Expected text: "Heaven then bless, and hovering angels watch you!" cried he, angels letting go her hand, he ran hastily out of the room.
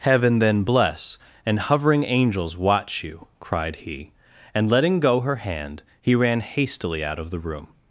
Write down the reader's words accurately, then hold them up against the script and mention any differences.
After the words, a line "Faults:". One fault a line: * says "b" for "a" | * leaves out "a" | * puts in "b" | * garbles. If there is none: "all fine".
"Heaven then bless, and hovering angels watch you!" cried he, and letting go her hand, he ran hastily out of the room.
Faults:
* says "and" for "angels"